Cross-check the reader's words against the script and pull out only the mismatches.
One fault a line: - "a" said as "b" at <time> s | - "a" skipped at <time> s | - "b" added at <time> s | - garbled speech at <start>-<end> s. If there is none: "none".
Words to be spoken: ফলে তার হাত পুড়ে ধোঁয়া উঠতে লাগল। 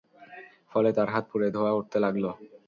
none